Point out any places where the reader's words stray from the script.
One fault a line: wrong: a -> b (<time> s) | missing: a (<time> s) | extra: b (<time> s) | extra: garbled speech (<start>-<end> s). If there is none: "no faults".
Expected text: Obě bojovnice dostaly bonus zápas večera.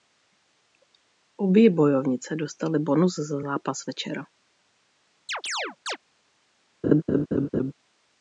extra: za (3.2 s)